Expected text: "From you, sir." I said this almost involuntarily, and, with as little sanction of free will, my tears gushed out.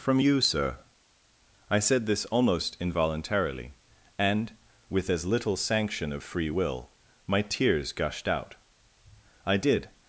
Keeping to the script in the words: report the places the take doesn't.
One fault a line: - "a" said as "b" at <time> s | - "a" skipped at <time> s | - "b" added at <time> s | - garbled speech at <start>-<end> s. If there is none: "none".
- "I did" added at 9.4 s